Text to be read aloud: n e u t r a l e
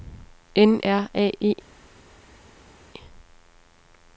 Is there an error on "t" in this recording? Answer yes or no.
yes